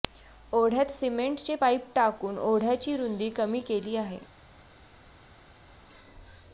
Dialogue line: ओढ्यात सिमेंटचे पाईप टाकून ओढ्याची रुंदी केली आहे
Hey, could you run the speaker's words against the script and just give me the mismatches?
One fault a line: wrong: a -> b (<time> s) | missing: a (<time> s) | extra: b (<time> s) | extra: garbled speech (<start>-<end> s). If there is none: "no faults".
extra: कमी (3.3 s)